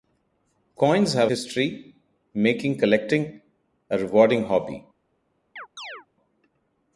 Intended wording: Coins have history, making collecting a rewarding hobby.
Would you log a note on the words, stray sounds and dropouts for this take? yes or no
yes